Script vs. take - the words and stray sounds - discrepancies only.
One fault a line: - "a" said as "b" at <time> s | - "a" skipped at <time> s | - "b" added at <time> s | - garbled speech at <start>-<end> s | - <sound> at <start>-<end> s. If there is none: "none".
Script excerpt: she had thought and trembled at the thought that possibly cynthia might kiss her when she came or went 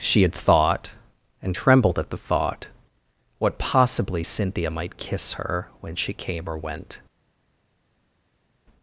- "that" said as "what" at 3.4 s